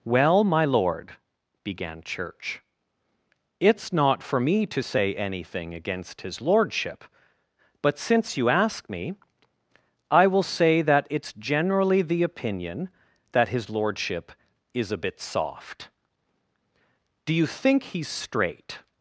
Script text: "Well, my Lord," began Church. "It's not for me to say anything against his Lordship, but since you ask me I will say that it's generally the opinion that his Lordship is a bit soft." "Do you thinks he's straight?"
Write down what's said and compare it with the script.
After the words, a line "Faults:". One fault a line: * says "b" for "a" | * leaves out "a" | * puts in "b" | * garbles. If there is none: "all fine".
"Well, my Lord," began Church. "It's not for me to say anything against his Lordship, but since you ask me I will say that it's generally the opinion that his Lordship is a bit soft." "Do you think he's straight?"
Faults:
* says "think" for "thinks"